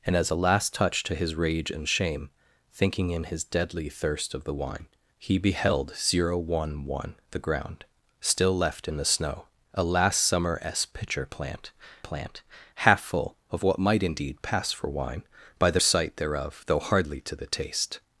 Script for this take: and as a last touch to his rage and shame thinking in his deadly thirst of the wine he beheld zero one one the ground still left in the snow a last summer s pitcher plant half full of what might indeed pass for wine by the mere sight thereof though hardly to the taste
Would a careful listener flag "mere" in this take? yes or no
yes